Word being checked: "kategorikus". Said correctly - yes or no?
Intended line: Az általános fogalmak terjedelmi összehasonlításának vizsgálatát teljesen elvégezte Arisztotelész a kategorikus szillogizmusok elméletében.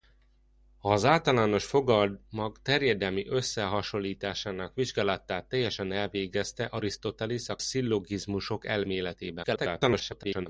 no